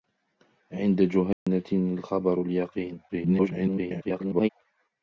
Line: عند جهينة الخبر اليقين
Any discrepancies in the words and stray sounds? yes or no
yes